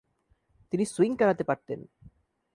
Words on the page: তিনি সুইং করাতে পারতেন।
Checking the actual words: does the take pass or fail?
pass